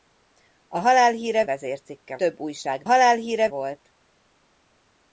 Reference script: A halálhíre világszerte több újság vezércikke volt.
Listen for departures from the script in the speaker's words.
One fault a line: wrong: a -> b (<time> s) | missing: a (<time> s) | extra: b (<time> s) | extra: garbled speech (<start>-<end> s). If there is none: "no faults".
wrong: világszerte -> vezércikke (1.4 s)
wrong: vezércikke -> halálhíre (2.8 s)